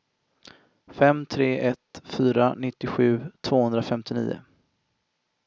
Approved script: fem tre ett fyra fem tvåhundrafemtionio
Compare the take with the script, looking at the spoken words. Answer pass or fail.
fail